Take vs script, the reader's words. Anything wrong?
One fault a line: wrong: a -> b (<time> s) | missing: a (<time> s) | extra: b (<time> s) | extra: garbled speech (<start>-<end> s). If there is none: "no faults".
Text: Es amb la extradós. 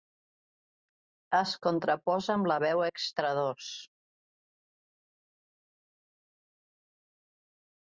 extra: contraposa (1.7 s)
extra: veu (2.7 s)